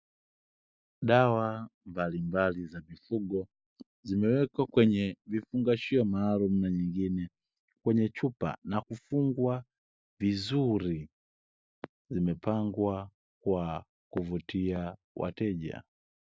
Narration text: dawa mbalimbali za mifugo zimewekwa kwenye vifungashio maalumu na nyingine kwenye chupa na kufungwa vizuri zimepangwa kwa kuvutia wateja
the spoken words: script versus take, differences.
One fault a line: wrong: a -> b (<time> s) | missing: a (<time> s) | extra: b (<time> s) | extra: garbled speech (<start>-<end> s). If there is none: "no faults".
no faults